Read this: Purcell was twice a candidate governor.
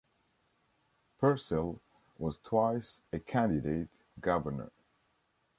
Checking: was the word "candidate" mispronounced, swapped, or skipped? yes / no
no